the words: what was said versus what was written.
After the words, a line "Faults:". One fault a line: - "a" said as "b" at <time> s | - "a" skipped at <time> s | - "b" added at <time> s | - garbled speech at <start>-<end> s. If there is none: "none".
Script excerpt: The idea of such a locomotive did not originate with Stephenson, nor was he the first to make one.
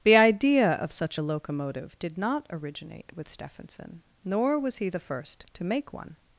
The idea of such a locomotive did not originate with Stephenson, nor was he the first to make one.
Faults:
none